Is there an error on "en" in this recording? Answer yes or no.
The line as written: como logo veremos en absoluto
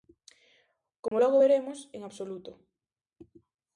no